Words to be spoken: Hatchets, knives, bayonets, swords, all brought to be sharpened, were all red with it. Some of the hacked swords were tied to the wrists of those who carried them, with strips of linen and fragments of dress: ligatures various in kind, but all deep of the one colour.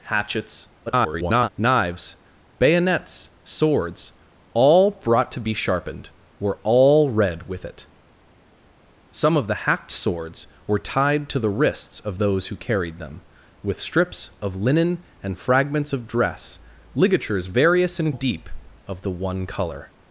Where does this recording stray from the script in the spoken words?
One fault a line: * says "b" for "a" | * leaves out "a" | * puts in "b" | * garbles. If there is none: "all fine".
* garbles
* leaves out "kind but all"